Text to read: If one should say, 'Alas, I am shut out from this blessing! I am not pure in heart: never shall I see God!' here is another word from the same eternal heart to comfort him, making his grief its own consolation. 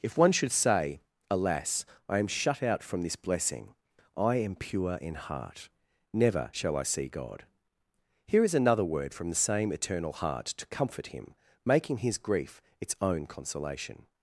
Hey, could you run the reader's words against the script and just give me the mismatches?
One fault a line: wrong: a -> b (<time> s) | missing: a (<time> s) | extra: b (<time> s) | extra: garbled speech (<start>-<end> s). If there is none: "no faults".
missing: not (4.5 s)